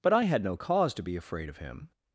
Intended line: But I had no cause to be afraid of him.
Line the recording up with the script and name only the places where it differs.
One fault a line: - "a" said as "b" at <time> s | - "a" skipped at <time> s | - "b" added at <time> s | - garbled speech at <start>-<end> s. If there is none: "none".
none